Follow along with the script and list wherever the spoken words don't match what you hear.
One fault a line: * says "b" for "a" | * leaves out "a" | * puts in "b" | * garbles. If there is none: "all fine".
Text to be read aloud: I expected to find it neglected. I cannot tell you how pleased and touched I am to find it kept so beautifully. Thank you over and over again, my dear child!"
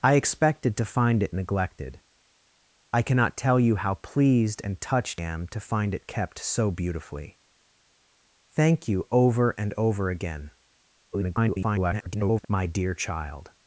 * leaves out "I"
* garbles